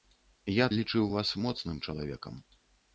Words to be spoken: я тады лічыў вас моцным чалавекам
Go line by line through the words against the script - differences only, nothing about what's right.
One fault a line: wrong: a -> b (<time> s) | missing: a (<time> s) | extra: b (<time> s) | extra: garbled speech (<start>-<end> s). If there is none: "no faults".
missing: тады (0.7 s)